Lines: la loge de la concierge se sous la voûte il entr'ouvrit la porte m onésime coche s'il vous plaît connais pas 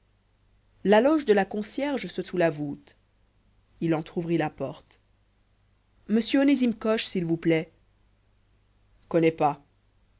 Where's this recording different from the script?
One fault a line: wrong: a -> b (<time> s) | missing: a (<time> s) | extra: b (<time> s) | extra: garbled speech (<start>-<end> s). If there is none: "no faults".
no faults